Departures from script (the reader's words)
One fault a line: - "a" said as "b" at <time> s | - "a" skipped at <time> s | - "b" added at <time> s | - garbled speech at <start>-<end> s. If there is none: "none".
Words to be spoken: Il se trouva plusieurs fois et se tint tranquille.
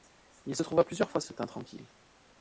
none